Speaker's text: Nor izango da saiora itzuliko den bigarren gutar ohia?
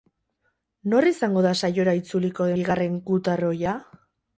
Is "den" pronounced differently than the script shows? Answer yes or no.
yes